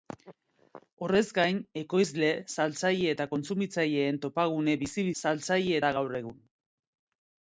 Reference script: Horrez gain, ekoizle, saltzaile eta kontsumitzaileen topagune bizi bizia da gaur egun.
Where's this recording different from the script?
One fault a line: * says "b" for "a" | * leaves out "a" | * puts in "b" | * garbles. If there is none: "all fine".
* says "saltzaile" for "bizia"